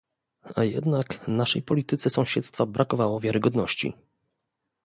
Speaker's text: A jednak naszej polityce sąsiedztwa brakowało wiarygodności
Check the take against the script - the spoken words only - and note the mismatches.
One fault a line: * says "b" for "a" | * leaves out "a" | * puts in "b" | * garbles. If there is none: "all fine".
all fine